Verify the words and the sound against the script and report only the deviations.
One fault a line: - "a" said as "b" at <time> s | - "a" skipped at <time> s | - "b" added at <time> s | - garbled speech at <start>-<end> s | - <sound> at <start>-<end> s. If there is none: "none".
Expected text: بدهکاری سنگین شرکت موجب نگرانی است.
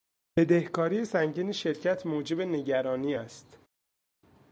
none